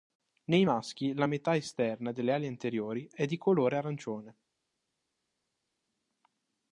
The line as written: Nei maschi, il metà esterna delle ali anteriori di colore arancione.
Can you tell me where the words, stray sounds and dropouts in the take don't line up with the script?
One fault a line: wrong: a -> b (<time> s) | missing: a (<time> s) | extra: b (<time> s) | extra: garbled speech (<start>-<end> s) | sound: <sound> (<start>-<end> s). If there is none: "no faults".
wrong: il -> la (1.1 s)
extra: è (3.1 s)